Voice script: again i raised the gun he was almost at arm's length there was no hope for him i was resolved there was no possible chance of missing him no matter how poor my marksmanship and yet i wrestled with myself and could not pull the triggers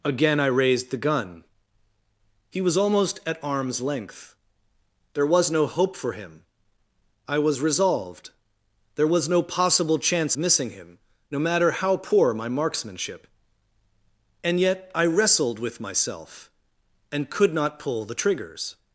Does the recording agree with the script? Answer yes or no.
no